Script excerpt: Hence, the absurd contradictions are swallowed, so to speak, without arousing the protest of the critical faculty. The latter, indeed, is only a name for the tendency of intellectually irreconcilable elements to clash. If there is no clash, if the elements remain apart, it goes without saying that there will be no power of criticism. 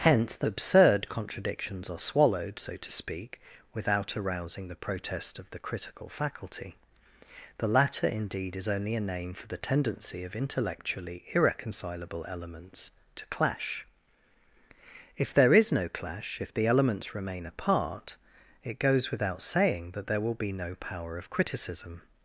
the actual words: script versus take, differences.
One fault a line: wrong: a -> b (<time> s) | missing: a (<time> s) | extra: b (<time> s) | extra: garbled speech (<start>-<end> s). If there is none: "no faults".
no faults